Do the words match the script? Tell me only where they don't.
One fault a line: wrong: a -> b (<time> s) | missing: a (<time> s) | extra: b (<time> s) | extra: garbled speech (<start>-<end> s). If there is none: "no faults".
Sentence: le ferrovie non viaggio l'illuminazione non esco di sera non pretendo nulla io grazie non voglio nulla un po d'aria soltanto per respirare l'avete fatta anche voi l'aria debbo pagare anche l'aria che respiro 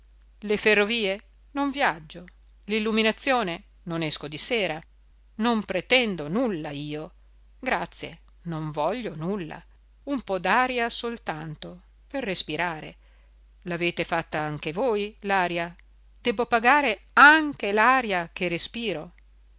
no faults